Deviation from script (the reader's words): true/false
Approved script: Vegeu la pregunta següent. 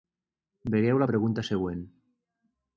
false